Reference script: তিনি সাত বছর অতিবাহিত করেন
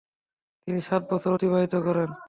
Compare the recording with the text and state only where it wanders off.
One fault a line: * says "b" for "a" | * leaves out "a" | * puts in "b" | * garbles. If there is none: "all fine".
all fine